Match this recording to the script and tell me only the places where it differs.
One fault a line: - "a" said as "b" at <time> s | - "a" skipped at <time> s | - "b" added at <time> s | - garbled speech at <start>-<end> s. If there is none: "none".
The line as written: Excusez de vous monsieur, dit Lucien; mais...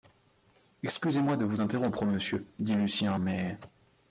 - "moi" added at 1.2 s
- "interrompre" added at 1.6 s